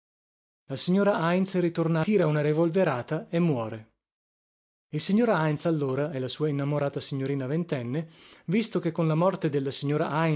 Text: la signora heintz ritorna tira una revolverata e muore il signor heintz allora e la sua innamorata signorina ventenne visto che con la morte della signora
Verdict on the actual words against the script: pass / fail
pass